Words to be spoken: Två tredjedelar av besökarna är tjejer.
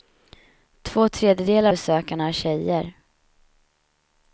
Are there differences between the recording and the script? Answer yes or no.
yes